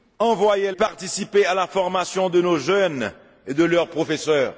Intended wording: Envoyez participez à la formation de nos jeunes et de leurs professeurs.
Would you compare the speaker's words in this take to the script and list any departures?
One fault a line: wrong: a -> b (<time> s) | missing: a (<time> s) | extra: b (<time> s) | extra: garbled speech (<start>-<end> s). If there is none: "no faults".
no faults